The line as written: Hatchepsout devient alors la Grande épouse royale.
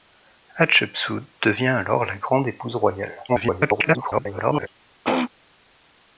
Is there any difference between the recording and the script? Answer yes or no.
yes